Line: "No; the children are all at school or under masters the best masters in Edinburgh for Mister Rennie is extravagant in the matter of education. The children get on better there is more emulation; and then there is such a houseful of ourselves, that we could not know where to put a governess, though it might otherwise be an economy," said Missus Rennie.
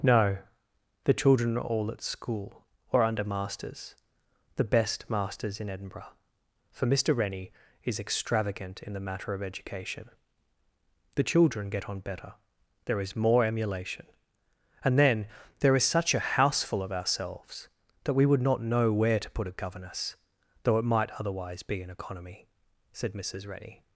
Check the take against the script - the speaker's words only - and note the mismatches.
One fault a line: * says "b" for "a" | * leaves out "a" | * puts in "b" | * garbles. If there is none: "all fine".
* says "would" for "could"